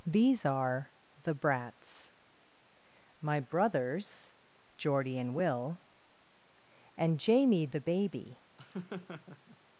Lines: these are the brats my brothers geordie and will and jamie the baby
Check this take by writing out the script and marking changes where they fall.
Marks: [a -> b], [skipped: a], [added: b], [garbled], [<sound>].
these are the brats my brothers geordie and will and jamie the baby [laugh]